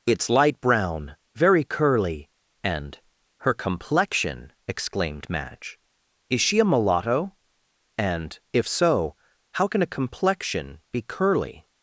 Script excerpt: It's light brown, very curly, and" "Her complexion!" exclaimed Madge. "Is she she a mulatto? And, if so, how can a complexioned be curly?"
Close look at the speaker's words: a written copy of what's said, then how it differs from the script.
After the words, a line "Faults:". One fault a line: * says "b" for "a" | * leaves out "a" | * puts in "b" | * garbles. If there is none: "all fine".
It's light brown, very curly, and" "Her complexion!" exclaimed Madge. "Is she a mulatto? And, if so, how can a complexion be curly?"
Faults:
* leaves out "she"
* says "complexion" for "complexioned"